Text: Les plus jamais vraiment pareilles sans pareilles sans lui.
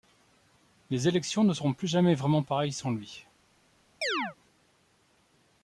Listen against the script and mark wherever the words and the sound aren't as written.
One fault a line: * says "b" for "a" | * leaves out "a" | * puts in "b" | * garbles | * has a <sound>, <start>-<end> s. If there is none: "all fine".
* puts in "élections ne seront"
* leaves out "pareilles sans"
* has a chirp, 4.0-4.4 s